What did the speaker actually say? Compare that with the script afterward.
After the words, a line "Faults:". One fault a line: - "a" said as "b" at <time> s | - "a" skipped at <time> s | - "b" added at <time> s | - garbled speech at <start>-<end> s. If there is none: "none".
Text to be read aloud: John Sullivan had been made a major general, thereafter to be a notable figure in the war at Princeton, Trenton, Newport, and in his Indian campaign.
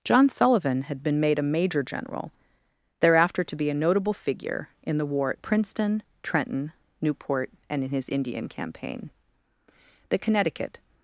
John Sullivan had been made a major general, thereafter to be a notable figure in the war at Princeton, Trenton, Newport, and in his Indian campaign. The Connecticut
Faults:
- "The Connecticut" added at 10.1 s